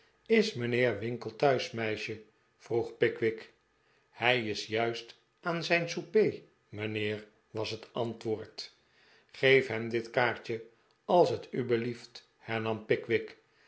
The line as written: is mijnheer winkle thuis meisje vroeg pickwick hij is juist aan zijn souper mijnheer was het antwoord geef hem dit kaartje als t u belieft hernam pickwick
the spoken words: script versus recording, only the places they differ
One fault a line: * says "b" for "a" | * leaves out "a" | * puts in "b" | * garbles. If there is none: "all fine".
all fine